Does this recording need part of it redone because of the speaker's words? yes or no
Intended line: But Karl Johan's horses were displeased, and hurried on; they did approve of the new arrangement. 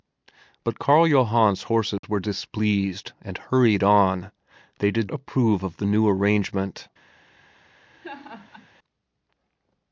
no